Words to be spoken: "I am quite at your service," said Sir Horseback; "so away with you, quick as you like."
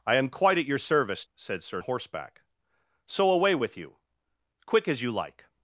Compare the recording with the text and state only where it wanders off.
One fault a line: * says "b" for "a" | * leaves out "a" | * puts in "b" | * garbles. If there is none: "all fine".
all fine